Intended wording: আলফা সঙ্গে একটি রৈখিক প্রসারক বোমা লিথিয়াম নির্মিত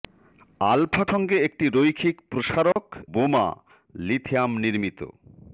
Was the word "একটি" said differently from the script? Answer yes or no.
no